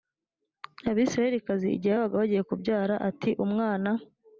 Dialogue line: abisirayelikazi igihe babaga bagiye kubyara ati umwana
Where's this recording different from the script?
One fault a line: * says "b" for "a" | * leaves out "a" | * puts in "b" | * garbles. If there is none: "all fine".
all fine